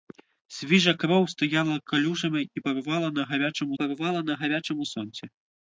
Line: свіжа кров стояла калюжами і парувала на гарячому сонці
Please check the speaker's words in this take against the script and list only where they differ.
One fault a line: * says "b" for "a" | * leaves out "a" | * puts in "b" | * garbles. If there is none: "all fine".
* puts in "парувала на гарячому"